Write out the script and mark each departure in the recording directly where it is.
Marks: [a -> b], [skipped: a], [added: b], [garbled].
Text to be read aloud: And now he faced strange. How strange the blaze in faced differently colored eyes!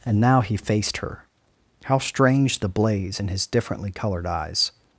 And now he faced [strange. -> her] How strange the blaze in [faced -> his] differently colored eyes!